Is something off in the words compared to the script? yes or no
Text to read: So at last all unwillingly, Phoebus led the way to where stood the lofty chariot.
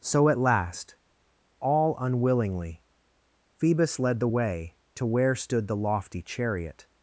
no